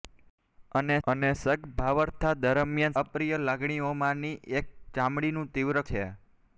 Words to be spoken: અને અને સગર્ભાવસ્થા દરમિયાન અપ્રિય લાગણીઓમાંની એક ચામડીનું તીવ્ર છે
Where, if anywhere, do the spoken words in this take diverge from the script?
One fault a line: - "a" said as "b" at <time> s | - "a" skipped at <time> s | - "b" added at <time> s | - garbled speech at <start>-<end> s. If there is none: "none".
none